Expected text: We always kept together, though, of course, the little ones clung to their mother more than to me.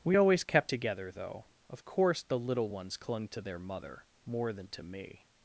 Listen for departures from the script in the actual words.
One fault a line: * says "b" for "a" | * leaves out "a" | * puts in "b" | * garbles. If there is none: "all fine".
all fine